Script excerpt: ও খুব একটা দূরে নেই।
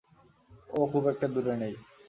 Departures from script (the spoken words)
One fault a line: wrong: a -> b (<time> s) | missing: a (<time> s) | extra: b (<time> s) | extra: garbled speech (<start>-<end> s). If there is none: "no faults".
no faults